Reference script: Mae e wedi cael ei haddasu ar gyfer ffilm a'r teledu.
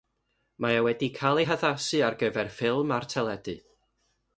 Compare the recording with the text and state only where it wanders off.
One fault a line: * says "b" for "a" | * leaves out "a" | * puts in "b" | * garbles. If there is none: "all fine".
all fine